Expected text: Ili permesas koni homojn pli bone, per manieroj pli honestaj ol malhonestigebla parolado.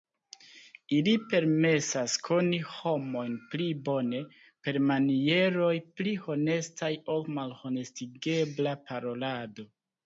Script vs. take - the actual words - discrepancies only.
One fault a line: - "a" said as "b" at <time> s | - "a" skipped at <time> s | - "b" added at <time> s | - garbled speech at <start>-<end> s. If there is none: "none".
none